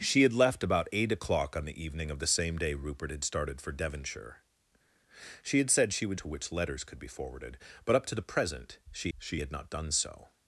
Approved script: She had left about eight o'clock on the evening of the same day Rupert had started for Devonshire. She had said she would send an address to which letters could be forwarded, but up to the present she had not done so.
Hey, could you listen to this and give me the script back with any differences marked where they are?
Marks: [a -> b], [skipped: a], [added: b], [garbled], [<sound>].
She had left about eight o'clock on the evening of the same day Rupert had started for Devonshire. She had said she would [skipped: send an address] to which letters could be forwarded, but up to the present she [added: she] had not done so.